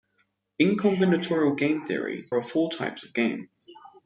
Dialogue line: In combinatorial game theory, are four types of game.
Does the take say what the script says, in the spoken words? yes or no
yes